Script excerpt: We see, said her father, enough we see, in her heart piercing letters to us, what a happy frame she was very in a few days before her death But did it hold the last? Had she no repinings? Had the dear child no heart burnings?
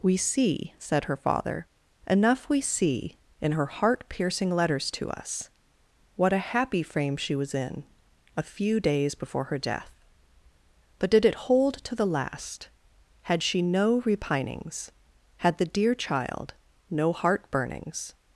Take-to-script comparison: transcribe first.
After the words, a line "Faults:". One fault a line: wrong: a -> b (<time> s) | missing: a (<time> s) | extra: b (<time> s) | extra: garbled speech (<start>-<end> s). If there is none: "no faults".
We see, said her father, enough we see, in her heart piercing letters to us, what a happy frame she was in a few days before her death But did it hold to the last? Had she no repinings? Had the dear child no heart burnings?
Faults:
missing: very (7.5 s)
extra: to (11.8 s)